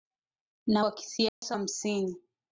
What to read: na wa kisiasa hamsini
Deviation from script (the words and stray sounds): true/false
true